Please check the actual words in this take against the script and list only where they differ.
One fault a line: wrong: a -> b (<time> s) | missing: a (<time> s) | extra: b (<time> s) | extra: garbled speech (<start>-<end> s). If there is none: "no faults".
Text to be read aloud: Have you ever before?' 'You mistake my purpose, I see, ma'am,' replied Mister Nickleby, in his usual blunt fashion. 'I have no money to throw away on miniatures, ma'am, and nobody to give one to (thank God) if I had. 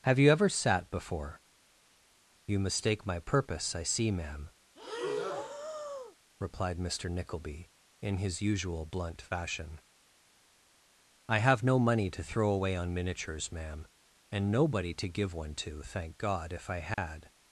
extra: sat (0.5 s)